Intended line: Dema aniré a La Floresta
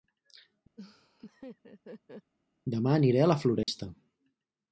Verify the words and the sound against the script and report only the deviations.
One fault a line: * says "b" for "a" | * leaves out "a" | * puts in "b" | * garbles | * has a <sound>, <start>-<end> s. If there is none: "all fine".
* has a laugh, 0.8-2.3 s
* has a dropout, 3.6-3.7 s